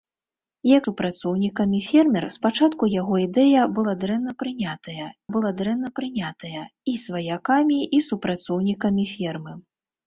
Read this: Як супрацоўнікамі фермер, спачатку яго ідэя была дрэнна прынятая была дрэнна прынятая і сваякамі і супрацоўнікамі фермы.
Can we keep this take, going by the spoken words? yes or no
yes